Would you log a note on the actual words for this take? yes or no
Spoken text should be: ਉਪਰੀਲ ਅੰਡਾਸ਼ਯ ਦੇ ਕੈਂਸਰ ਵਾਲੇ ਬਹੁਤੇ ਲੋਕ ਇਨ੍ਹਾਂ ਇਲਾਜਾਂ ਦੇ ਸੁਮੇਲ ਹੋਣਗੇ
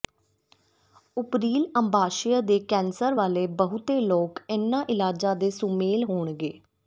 no